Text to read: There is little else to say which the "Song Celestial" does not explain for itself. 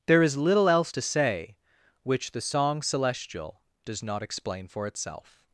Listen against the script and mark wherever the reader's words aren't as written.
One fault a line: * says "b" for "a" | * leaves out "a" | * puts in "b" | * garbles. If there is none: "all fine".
all fine